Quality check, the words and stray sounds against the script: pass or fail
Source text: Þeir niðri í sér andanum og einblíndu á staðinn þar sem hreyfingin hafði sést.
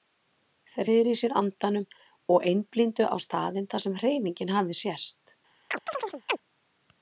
fail